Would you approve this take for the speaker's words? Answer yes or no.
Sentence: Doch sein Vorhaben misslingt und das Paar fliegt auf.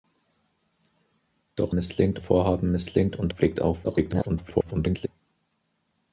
no